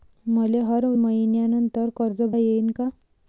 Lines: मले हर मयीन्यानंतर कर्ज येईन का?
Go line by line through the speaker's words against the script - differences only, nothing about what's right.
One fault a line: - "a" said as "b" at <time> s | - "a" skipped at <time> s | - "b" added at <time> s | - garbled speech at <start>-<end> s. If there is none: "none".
none